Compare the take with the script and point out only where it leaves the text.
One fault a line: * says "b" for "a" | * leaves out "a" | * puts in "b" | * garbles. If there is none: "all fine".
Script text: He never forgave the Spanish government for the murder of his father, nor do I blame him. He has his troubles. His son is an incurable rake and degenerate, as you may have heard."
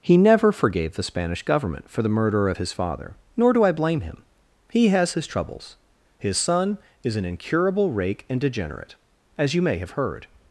all fine